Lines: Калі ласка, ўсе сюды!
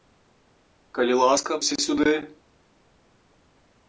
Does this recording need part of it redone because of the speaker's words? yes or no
no